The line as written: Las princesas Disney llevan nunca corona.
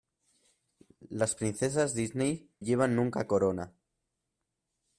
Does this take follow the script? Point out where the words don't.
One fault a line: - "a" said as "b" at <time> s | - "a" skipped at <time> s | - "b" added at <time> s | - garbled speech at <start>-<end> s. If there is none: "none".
none